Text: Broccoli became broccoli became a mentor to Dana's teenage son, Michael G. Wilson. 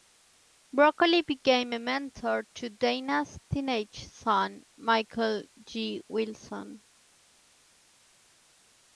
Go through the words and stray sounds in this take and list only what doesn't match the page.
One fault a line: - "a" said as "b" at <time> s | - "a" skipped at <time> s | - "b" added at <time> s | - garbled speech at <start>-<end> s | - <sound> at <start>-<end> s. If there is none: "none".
- "broccoli became" skipped at 1.8 s